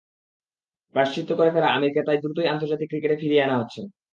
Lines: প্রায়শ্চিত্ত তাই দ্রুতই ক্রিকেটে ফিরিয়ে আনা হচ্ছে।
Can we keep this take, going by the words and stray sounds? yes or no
no